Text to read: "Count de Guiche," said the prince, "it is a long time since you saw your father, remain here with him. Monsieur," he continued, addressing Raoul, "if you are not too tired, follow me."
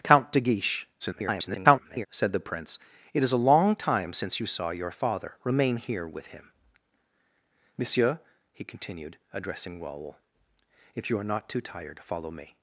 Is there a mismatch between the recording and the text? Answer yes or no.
yes